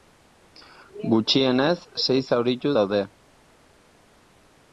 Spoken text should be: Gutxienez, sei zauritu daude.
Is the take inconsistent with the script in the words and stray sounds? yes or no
no